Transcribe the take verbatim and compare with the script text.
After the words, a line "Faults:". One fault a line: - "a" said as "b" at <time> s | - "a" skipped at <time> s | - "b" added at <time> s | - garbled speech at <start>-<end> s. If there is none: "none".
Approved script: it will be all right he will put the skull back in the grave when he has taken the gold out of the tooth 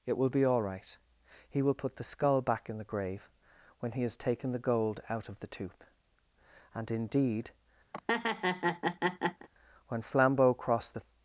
it will be all right he will put the skull back in the grave when he has taken the gold out of the tooth and indeed when flambeau crossed the
Faults:
- "and indeed when flambeau crossed the" added at 6.7 s